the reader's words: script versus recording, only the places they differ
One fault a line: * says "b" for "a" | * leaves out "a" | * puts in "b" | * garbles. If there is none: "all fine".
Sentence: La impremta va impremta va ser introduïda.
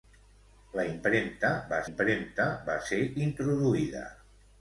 all fine